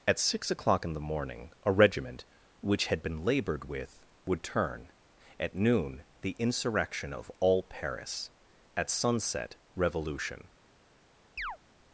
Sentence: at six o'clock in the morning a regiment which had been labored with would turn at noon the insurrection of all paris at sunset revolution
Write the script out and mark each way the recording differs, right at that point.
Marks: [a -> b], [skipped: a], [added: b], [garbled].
at six o'clock in the morning a regiment which had been labored with would turn at noon the insurrection of all paris at sunset revolution